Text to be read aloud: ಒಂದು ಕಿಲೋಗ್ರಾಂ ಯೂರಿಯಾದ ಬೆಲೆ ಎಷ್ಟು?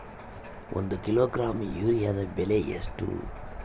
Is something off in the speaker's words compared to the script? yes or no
no